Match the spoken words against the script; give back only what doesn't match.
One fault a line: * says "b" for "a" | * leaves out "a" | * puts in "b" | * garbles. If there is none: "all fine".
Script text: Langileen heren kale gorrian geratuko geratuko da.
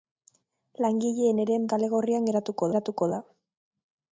all fine